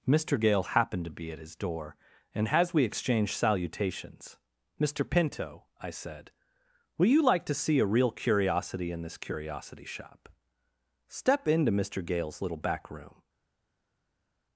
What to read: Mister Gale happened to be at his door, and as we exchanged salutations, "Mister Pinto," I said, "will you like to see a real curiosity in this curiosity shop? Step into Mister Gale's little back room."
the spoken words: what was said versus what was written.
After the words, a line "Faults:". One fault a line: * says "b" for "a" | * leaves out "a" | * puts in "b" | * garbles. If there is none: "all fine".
Mister Gale happened to be at his door, and as we exchanged salutations, "Mister Pinto," I said, "will you like to see a real curiosity in this curiosity shop? Step into Mister Gale's little back room."
Faults:
all fine